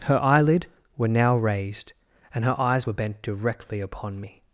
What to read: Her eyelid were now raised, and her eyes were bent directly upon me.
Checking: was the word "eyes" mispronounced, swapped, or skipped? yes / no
no